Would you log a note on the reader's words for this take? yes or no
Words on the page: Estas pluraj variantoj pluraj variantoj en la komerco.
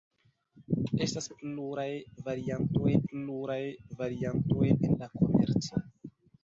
no